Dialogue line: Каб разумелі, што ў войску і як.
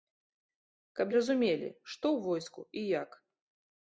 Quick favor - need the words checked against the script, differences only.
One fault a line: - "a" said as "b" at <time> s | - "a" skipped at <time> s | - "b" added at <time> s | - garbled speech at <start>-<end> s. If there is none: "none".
none